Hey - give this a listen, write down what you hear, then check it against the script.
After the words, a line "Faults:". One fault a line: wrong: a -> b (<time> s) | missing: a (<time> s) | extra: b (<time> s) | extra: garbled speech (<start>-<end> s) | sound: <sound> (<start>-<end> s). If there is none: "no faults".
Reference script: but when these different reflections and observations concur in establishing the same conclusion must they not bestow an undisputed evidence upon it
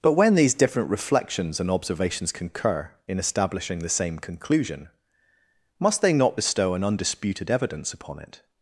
but when these different reflections and observations concur in establishing the same conclusion must they not bestow an undisputed evidence upon it
Faults:
no faults